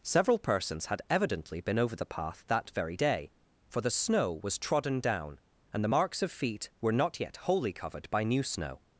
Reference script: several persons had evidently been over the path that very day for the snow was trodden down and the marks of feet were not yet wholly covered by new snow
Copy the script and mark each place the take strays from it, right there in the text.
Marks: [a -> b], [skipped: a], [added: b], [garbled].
several persons had evidently been over the path that very day for the snow was trodden down and the marks of feet were not yet wholly covered by new snow